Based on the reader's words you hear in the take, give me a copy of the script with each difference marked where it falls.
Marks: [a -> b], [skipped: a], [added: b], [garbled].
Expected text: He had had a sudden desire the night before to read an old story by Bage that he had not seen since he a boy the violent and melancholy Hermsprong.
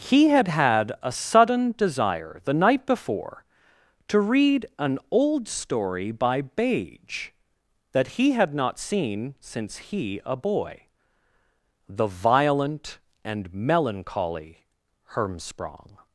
He had had a sudden desire the night before to read an old story by Bage that he had not seen since he a boy the violent and melancholy Hermsprong.